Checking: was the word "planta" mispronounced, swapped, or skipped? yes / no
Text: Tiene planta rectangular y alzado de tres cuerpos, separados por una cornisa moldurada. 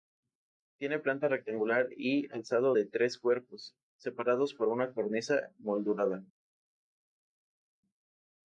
no